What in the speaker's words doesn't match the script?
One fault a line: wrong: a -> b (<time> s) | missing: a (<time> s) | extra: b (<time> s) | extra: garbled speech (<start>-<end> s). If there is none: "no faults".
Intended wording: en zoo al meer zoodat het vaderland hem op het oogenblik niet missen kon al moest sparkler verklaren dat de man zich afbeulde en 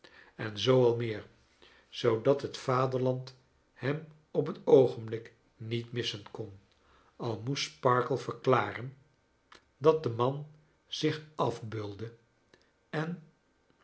no faults